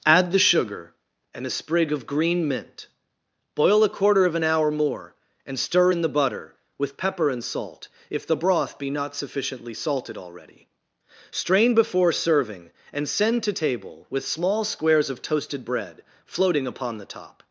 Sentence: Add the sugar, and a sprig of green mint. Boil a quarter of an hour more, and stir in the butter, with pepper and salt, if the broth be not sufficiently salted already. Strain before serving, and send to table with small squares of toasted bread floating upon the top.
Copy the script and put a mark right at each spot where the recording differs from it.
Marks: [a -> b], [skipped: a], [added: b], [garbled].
Add the sugar, and a sprig of green mint. Boil a quarter of an hour more, and stir in the butter, with pepper and salt, if the broth be not sufficiently salted already. Strain before serving, and send to table with small squares of toasted bread floating upon the top.